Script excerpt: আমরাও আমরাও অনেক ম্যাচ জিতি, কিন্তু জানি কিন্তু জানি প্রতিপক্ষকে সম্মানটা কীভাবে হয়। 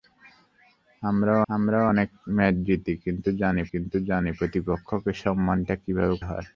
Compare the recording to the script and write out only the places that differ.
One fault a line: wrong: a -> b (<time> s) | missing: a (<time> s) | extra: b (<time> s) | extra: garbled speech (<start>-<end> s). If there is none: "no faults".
no faults